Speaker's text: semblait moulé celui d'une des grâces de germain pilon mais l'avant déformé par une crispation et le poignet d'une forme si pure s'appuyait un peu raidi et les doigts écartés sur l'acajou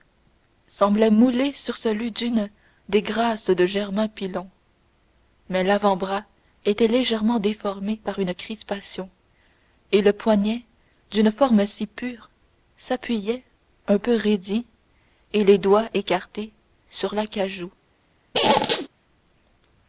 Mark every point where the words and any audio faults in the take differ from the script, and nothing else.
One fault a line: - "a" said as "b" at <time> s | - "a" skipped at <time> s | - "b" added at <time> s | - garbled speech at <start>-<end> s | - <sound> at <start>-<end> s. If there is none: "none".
- "sur" added at 1.5 s
- "bras était légèrement" added at 6.0 s
- squeak at 18.3-18.9 s